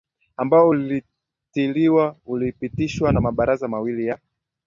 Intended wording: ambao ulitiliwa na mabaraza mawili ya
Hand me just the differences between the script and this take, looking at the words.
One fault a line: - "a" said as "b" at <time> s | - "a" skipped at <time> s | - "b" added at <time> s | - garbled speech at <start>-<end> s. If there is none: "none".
- "ulipitishwa" added at 2.3 s